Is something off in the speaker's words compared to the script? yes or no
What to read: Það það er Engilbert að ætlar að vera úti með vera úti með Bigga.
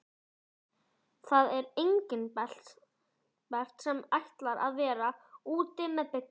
yes